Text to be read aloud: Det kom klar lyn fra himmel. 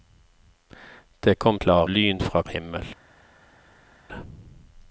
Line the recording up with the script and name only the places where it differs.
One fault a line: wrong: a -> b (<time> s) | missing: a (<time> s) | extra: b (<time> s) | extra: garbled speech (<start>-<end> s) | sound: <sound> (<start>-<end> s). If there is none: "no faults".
no faults